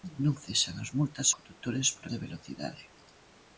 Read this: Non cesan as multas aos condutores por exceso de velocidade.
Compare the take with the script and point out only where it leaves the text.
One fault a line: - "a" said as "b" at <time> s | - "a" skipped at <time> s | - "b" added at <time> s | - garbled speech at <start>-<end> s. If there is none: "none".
- "aos" skipped at 1.3 s
- "exceso" skipped at 2.0 s